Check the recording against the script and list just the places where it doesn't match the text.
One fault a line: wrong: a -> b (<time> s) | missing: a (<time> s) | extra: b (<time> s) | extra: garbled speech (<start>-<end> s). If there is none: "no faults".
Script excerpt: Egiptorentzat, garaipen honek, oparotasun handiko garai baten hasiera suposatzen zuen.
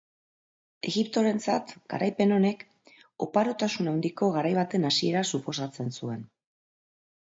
no faults